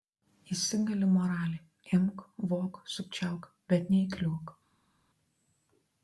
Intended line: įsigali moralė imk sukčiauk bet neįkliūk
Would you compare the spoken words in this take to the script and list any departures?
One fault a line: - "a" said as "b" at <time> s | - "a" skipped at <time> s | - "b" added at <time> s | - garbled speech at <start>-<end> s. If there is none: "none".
- "vok" added at 2.5 s